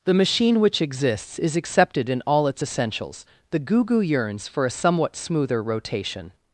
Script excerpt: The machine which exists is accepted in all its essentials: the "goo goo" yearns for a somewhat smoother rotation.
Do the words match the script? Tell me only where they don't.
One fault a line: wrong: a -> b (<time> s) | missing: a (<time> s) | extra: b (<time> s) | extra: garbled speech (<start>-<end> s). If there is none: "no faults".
no faults